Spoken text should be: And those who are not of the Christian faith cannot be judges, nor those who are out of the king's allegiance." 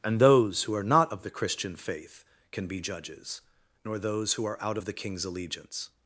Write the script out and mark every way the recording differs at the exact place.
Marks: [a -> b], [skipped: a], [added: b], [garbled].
And those who are not of the Christian faith [cannot -> can] be judges, nor those who are out of the king's allegiance."